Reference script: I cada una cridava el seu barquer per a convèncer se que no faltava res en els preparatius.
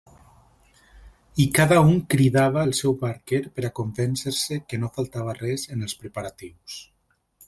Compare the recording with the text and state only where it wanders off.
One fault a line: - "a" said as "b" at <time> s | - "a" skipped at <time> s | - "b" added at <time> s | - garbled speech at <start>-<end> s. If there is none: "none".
- "una" said as "un" at 1.9 s